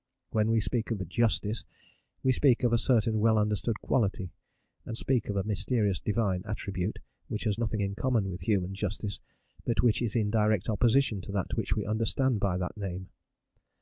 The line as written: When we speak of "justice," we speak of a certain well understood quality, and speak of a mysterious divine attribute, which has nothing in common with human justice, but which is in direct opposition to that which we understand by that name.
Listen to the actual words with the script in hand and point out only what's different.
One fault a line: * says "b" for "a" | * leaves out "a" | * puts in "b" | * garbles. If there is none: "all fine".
all fine